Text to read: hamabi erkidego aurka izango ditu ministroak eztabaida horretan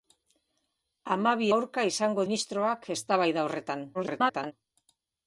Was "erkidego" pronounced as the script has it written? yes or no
no